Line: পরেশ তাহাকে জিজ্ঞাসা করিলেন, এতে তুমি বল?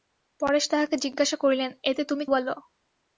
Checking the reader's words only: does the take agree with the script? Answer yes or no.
yes